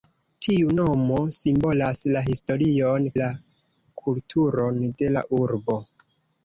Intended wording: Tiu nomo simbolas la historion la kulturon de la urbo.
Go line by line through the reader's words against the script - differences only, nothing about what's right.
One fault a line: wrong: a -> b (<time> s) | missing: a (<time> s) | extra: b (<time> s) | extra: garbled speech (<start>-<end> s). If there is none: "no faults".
no faults